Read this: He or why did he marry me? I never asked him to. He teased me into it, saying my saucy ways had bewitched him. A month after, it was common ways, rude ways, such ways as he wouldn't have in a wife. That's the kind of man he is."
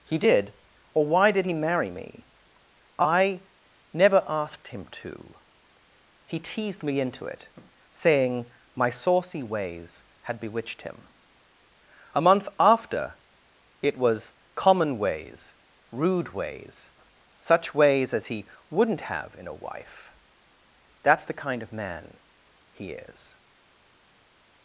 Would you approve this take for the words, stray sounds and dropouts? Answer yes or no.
no